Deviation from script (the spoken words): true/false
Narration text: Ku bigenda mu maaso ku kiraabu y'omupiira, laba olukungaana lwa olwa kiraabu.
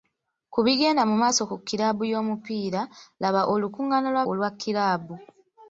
false